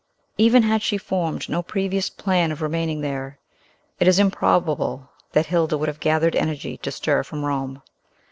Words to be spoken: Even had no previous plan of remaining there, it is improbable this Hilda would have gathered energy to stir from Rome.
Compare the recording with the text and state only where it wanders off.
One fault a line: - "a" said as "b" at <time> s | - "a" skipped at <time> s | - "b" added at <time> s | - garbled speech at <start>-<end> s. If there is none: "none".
- "she formed" added at 0.8 s
- "this" said as "that" at 5.3 s